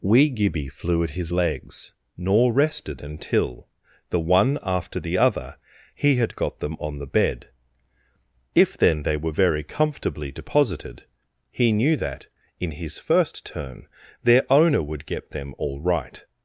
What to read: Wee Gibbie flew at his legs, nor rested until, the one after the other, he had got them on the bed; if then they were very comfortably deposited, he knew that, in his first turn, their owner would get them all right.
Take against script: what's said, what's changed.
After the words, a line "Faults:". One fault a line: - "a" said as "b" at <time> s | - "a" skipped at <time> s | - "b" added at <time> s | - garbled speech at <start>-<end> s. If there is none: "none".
Wee Gibbie flew at his legs, nor rested until, the one after the other, he had got them on the bed; if then they were very comfortably deposited, he knew that, in his first turn, their owner would get them all right.
Faults:
none